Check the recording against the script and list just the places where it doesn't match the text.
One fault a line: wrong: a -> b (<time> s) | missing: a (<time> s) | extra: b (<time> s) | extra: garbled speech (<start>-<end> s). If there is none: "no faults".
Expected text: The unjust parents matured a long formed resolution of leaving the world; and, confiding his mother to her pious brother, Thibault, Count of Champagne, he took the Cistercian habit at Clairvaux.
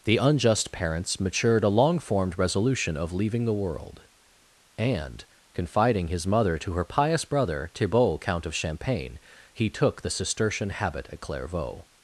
no faults